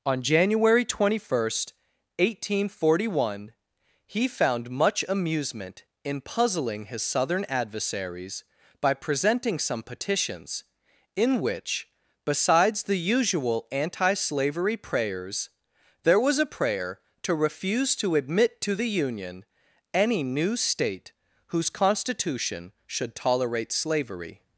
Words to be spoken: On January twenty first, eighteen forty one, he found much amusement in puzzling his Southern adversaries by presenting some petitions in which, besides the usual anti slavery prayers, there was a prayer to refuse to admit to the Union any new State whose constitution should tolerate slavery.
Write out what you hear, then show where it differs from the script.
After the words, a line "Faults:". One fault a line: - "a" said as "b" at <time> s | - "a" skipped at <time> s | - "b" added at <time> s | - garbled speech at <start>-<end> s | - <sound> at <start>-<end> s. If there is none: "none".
On January twenty first, eighteen forty one, he found much amusement in puzzling his Southern adversaries by presenting some petitions in which, besides the usual anti slavery prayers, there was a prayer to refuse to admit to the Union any new State whose constitution should tolerate slavery.
Faults:
none